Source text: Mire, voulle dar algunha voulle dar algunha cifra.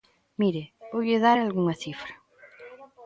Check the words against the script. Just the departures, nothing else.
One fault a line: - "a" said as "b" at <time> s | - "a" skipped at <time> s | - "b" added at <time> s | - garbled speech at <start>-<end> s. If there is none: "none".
- "voulle dar algunha" skipped at 1.7 s